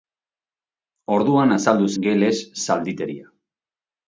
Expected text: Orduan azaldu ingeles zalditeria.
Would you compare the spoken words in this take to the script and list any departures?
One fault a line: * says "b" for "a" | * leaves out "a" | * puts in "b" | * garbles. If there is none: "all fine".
all fine